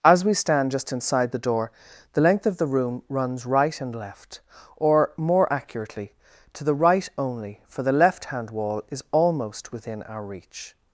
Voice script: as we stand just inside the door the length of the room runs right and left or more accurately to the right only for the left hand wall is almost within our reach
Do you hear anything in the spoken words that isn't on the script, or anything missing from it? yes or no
no